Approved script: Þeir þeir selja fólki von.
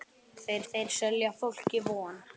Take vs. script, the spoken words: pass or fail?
pass